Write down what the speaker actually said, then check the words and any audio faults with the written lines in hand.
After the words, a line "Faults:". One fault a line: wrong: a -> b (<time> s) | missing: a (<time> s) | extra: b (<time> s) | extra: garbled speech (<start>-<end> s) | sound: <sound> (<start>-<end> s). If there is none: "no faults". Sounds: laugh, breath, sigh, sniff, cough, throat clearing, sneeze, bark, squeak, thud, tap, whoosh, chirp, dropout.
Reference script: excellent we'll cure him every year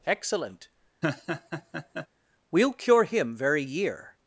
excellent we'll cure him very year
Faults:
sound: laugh (1.0-2.1 s)
wrong: every -> very (3.4 s)